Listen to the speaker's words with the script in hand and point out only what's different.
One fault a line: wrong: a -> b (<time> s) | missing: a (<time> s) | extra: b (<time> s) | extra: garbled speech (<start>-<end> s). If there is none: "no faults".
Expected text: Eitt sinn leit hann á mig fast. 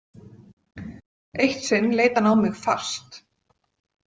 no faults